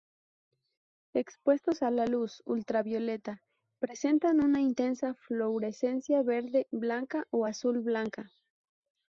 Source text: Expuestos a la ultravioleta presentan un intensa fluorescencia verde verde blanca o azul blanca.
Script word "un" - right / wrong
wrong